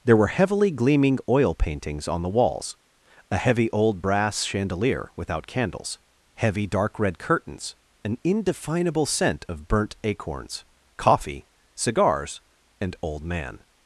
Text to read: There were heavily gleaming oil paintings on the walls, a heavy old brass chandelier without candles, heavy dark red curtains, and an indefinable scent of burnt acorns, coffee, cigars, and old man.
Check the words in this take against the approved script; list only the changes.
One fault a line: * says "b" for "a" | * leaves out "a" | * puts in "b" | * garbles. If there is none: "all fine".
* leaves out "and"